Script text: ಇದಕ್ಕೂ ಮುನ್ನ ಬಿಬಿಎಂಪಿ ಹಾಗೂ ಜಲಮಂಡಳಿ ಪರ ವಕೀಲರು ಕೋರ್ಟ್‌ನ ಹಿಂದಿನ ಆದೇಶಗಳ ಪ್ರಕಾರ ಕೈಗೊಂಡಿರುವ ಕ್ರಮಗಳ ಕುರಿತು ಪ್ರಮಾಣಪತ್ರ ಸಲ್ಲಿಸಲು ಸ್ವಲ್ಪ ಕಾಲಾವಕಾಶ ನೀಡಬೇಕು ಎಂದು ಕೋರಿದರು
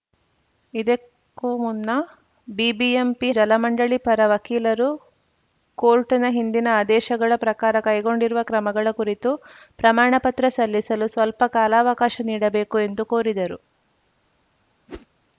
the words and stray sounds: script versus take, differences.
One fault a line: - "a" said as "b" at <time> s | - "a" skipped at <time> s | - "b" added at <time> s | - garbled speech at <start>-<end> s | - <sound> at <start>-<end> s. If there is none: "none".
- "ಹಾಗೂ" skipped at 3.3 s
- whoosh at 14.9-15.1 s